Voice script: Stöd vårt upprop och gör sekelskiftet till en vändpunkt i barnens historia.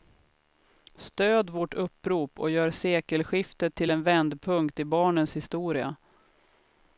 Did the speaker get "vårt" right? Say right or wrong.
right